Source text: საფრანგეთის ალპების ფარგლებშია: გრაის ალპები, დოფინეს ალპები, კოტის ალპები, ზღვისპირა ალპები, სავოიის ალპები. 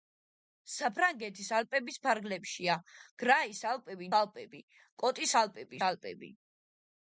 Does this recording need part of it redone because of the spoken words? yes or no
yes